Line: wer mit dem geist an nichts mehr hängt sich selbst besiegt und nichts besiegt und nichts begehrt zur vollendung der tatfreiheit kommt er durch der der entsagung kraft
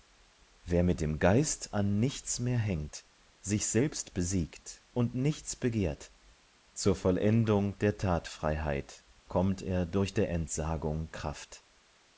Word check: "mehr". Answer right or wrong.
right